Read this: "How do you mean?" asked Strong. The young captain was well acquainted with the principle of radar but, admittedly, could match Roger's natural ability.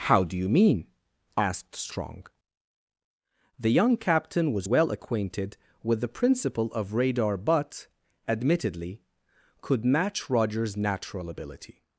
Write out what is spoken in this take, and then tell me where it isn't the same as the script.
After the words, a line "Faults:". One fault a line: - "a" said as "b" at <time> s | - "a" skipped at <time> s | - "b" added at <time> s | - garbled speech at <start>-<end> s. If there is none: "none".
"How do you mean?" asked Strong. The young captain was well acquainted with the principle of radar but, admittedly, could match Roger's natural ability.
Faults:
none